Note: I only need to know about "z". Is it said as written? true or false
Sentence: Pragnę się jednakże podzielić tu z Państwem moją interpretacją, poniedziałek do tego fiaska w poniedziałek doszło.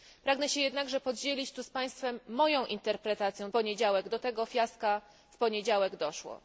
true